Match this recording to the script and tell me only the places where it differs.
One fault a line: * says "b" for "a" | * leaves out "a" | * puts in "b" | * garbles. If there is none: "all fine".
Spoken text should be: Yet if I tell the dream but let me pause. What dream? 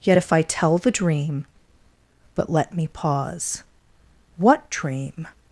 all fine